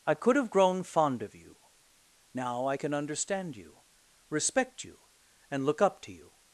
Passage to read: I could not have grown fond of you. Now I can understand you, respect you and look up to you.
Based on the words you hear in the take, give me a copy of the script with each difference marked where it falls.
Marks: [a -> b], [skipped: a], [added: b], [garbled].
I could [skipped: not] have grown fond of you. Now I can understand you, respect you and look up to you.